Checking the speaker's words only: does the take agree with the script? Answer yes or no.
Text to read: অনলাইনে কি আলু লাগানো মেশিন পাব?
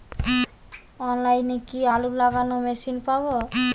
yes